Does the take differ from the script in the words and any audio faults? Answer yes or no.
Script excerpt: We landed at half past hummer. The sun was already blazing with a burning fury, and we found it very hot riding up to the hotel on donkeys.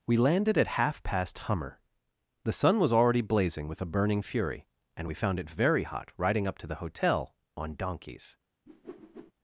yes